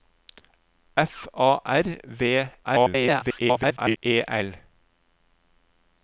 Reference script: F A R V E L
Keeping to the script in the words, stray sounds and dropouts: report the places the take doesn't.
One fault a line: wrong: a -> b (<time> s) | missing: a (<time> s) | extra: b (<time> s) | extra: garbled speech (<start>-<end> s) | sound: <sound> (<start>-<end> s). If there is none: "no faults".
extra: garbled speech (2.6-4.0 s)